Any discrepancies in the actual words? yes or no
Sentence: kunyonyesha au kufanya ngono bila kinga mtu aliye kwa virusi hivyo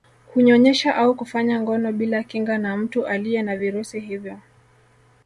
yes